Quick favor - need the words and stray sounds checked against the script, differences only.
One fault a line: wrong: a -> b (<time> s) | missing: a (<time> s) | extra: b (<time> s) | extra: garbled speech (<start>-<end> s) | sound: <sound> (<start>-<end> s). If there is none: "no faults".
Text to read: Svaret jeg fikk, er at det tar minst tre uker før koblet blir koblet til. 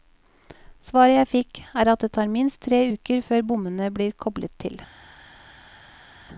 wrong: koblet -> bommene (3.5 s)